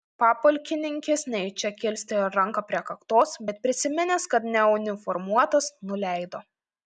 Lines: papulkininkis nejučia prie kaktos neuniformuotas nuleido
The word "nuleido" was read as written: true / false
true